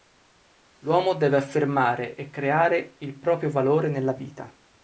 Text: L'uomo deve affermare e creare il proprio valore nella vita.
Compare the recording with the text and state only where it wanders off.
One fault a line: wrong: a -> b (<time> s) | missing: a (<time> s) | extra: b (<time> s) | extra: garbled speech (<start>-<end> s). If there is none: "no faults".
no faults